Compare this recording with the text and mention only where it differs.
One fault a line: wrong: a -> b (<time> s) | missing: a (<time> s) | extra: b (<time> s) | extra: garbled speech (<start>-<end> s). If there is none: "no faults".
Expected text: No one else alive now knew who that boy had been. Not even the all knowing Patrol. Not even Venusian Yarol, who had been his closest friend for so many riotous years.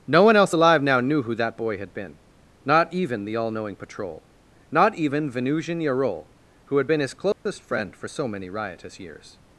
no faults